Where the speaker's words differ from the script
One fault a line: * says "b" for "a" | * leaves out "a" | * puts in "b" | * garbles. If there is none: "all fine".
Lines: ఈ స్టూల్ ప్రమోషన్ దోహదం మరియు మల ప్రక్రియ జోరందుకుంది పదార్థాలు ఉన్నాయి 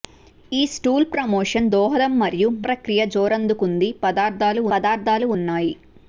* leaves out "మల"
* puts in "పదార్థాలు"